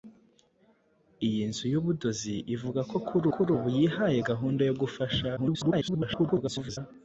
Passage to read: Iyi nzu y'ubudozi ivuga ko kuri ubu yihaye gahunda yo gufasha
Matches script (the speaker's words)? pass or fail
fail